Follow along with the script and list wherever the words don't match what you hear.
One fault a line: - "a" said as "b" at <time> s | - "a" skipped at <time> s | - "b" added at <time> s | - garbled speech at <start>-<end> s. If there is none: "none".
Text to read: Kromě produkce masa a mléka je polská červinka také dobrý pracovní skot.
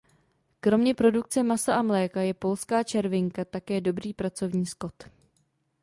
none